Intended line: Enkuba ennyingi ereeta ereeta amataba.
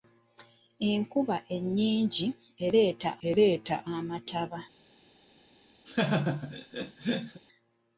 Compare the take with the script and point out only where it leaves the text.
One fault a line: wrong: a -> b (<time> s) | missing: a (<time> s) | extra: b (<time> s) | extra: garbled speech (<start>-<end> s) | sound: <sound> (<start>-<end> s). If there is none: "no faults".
sound: laugh (5.9-7.4 s)